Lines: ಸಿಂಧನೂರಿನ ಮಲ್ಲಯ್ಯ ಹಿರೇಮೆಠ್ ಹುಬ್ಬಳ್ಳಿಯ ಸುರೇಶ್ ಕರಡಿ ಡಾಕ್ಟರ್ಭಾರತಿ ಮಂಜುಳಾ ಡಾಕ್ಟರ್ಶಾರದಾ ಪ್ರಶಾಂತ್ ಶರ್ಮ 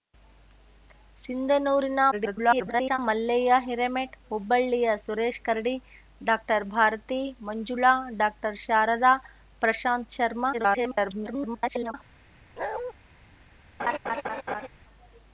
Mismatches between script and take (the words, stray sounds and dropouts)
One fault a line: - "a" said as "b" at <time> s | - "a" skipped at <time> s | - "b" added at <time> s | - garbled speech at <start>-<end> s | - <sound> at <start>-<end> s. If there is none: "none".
- garbled speech at 2.1-3.0 s
- garbled speech at 10.5-11.9 s
- bark at 12.6-12.9 s
- laugh at 13.8-14.7 s